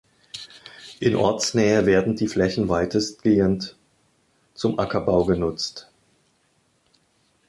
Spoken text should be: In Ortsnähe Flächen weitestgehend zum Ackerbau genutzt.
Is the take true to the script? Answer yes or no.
no